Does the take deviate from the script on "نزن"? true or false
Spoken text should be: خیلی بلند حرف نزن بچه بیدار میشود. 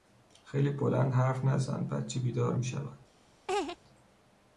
false